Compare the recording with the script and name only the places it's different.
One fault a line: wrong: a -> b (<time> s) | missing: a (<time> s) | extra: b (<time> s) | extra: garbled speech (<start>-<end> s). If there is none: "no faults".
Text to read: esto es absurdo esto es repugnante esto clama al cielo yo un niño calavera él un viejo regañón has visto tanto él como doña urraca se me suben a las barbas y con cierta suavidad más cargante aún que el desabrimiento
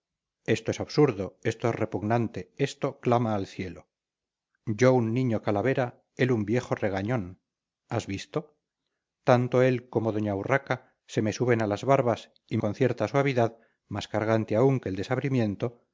no faults